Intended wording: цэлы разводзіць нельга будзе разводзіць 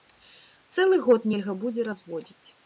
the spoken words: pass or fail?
fail